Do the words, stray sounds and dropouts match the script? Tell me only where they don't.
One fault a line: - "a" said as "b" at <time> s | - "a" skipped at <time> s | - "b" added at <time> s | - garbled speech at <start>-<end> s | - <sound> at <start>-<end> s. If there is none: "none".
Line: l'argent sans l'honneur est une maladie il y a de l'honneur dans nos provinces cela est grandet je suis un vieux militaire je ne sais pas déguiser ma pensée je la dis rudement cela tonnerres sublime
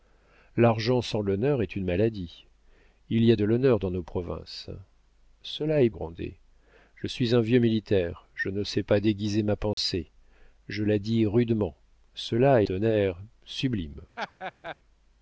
- dropout at 9.7-9.8 s
- laugh at 14.2-14.8 s